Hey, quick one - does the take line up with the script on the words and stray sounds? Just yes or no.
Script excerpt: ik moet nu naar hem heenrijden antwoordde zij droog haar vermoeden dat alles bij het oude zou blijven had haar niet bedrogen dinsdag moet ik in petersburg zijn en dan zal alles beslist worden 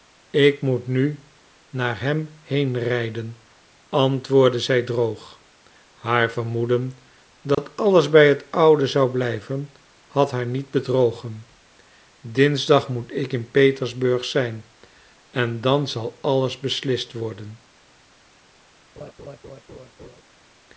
no